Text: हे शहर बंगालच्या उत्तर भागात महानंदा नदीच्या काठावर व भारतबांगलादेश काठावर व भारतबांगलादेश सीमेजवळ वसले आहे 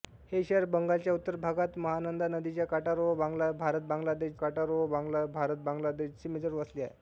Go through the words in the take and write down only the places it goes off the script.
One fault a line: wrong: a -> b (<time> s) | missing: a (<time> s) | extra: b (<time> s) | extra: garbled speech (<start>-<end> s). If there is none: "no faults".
no faults